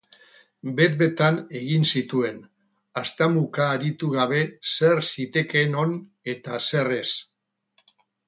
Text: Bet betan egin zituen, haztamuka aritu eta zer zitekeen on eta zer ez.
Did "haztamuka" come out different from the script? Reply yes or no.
no